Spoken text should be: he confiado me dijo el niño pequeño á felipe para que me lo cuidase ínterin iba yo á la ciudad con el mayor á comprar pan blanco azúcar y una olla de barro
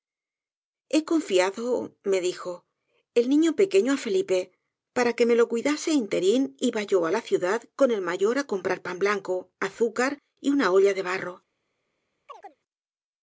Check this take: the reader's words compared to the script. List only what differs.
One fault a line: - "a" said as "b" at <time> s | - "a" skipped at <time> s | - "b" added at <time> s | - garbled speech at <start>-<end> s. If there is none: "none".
none